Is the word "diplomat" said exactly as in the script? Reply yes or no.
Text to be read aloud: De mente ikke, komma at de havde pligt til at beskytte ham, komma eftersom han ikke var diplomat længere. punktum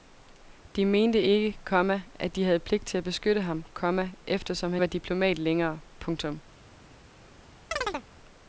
yes